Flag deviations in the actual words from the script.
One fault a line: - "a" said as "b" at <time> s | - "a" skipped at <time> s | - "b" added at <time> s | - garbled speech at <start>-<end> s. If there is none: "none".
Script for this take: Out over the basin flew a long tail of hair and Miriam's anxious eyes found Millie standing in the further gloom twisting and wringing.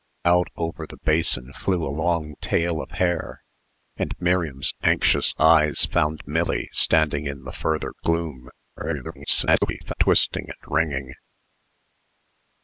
- garbled speech at 8.8-9.9 s